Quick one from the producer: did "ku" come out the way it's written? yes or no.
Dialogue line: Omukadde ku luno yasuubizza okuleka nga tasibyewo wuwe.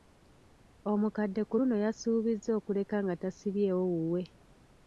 yes